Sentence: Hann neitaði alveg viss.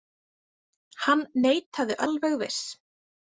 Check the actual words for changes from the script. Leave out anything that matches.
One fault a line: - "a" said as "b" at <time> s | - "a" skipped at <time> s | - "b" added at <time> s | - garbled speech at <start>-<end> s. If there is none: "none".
none